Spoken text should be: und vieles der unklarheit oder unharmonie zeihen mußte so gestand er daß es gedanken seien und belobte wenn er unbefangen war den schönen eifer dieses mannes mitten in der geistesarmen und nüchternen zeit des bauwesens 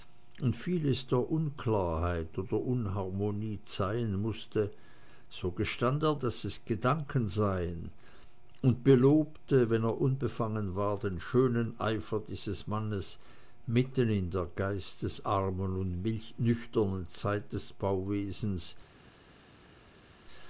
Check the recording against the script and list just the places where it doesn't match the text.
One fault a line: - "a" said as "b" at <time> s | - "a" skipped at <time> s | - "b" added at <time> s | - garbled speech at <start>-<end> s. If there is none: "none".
none